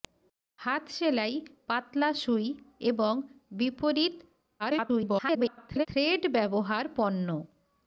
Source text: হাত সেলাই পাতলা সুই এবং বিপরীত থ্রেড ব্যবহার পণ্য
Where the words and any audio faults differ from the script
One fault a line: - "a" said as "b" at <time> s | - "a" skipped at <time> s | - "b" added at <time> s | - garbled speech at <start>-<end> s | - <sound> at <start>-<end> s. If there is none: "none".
- garbled speech at 4.6-5.9 s